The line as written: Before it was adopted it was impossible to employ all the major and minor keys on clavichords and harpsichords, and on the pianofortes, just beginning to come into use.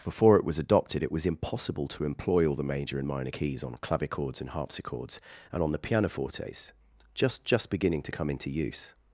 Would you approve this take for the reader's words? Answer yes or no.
no